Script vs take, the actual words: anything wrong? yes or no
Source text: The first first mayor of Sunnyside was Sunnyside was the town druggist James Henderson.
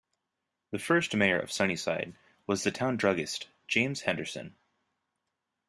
yes